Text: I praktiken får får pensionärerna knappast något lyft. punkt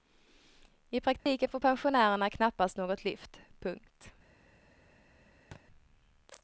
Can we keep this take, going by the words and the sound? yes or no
no